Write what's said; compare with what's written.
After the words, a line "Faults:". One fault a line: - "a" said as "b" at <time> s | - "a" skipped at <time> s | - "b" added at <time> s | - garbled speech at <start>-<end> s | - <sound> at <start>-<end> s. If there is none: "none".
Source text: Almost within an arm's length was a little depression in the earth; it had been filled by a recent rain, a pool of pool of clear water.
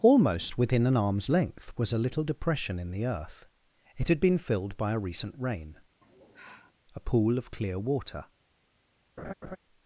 Almost within an arm's length was a little depression in the earth; it had been filled by a recent rain, a pool of clear water.
Faults:
- sigh at 6.0-6.7 s
- "pool of" skipped at 7.5 s
- laugh at 9.2-9.6 s